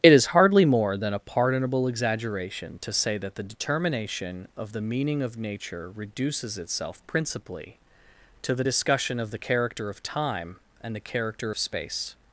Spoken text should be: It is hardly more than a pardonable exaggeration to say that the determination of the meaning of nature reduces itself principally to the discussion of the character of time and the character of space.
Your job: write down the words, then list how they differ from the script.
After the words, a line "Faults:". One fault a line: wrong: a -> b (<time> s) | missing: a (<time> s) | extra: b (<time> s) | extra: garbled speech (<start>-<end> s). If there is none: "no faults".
It is hardly more than a pardonable exaggeration to say that the determination of the meaning of nature reduces itself principally to the discussion of the character of time and the character of space.
Faults:
no faults